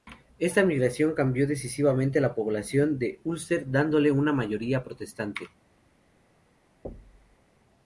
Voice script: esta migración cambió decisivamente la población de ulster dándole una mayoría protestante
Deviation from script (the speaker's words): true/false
false